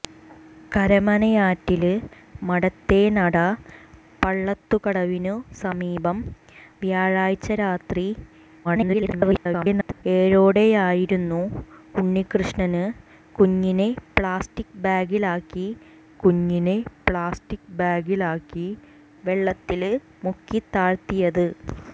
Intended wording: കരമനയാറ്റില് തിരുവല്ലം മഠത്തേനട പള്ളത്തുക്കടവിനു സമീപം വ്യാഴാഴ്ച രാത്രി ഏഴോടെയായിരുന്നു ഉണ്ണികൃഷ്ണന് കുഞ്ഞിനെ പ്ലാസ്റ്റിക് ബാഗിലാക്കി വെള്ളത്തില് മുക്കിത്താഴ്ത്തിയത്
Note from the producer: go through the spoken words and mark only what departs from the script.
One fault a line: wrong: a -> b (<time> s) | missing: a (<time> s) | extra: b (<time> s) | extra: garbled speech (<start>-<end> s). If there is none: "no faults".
missing: തിരുവല്ലം (1.9 s)
extra: garbled speech (8.6-10.0 s)
extra: കുഞ്ഞിനെ പ്ലാസ്റ്റിക് ബാഗിലാക്കി (16.2 s)